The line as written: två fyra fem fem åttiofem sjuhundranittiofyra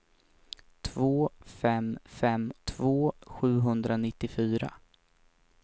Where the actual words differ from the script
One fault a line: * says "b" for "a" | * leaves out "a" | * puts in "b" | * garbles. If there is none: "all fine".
* leaves out "fyra"
* says "två" for "åttiofem"